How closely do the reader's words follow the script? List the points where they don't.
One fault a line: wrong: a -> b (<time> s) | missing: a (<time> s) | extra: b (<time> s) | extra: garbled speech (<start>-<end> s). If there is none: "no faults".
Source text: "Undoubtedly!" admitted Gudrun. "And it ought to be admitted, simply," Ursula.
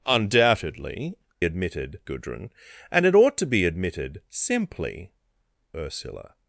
no faults